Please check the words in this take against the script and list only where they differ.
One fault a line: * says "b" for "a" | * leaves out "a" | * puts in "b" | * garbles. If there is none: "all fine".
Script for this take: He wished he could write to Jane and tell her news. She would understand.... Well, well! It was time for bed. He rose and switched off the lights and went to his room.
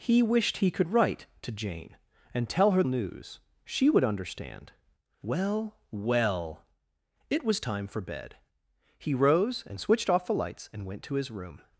all fine